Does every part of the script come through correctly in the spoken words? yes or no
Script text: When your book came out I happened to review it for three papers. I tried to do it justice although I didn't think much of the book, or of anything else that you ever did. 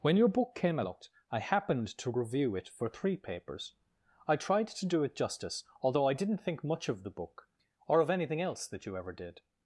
yes